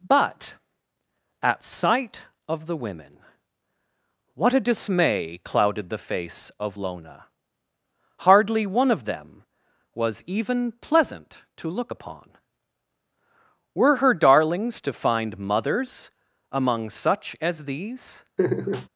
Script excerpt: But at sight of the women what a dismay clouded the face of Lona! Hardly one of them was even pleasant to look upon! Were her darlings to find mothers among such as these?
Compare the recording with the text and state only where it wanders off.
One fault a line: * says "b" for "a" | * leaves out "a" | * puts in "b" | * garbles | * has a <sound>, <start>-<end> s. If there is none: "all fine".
* has a laugh, 18.4-18.9 s